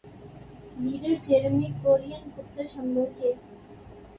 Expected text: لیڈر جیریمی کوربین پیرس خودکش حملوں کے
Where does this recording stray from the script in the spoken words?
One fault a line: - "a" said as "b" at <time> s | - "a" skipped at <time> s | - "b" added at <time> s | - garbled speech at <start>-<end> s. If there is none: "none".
- "پیرس" skipped at 2.3 s